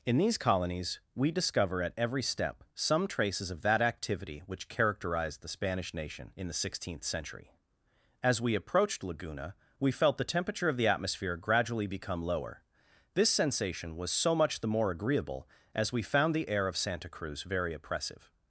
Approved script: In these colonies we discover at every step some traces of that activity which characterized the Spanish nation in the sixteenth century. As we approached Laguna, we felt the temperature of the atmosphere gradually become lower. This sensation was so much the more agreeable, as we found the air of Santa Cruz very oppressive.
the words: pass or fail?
pass